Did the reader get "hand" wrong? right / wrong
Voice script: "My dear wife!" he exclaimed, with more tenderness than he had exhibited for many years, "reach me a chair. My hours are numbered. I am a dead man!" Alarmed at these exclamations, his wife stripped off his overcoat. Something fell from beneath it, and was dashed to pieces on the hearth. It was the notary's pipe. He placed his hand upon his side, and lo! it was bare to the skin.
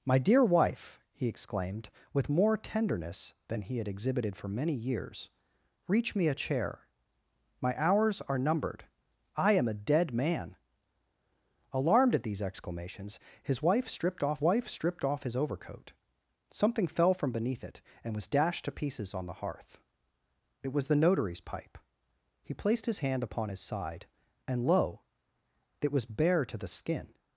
right